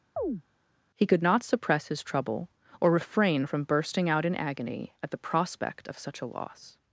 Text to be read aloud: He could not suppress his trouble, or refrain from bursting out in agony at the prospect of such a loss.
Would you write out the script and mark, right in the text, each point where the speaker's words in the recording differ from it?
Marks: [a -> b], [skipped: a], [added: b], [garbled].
He could not suppress his trouble, or refrain from bursting out in agony at the prospect of such a loss.